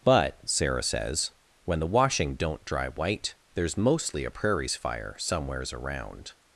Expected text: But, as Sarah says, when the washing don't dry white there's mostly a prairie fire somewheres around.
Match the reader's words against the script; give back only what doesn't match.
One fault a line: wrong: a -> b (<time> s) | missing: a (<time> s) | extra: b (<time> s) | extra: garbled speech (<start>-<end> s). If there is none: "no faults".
missing: as (0.4 s)
wrong: prairie -> prairies (4.3 s)